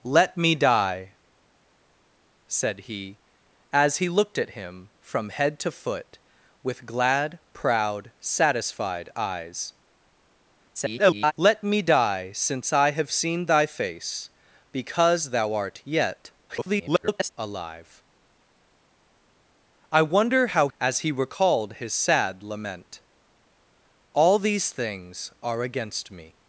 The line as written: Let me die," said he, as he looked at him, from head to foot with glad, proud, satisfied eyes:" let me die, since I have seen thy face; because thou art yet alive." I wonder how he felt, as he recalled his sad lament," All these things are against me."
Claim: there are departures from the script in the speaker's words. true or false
true